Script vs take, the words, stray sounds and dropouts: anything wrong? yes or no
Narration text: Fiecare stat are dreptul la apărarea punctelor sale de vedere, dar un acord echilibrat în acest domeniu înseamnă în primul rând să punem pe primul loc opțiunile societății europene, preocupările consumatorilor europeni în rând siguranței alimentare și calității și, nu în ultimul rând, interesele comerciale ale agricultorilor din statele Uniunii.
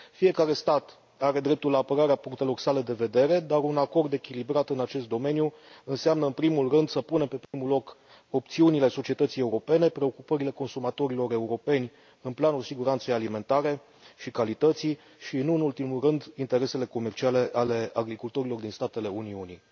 yes